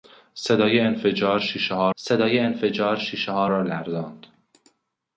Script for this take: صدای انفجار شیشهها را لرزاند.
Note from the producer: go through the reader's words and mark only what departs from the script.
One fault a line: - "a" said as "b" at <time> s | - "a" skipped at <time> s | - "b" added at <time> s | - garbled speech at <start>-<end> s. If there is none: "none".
- "صدای انفجار شیشهها" added at 1.9 s